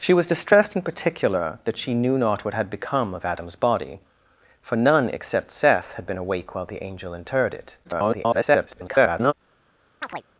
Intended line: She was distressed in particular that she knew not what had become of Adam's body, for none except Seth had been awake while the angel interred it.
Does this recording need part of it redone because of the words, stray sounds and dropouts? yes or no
yes